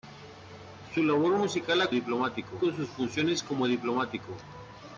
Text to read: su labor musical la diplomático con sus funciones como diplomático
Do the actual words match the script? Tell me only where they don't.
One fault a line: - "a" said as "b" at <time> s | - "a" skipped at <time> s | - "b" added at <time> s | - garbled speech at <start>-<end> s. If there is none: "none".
none